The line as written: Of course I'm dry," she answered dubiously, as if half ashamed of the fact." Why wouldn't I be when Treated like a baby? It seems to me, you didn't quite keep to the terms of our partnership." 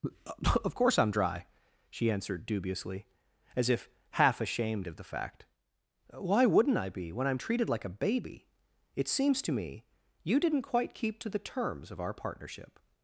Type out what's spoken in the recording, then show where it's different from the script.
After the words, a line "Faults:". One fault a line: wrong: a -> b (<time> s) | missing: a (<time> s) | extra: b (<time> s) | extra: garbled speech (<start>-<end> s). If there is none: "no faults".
Of course I'm dry," she answered dubiously, as if half ashamed of the fact." Why wouldn't I be when I'm treated like a baby? It seems to me, you didn't quite keep to the terms of our partnership."
Faults:
extra: I'm (7.3 s)